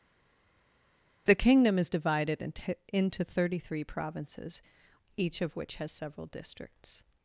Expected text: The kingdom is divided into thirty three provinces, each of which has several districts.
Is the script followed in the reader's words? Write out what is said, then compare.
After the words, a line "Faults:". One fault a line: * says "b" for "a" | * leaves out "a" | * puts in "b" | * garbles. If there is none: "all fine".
The kingdom is divided into into thirty three provinces, each of which has several districts.
Faults:
* puts in "into"